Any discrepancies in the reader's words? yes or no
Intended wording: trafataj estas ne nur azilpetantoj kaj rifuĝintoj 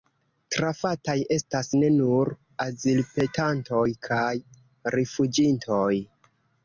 no